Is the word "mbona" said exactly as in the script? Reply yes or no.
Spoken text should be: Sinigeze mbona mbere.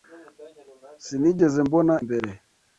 yes